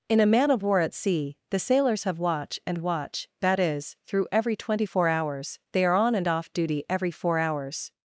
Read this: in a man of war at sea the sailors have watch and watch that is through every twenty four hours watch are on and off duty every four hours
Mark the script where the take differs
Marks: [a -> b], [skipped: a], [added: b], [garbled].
in a man of war at sea the sailors have watch and watch that is through every twenty four hours [watch -> they] are on and off duty every four hours